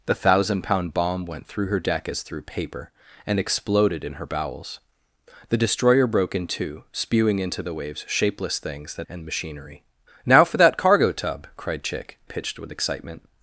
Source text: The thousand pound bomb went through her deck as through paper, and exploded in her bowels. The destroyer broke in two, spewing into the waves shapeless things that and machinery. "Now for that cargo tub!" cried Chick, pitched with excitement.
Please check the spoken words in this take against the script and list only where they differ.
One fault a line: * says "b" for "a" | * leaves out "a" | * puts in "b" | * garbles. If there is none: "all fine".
all fine